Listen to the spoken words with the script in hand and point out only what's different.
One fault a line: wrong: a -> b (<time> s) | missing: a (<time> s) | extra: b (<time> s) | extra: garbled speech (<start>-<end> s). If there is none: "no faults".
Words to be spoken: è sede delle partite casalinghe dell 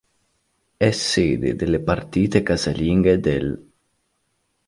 no faults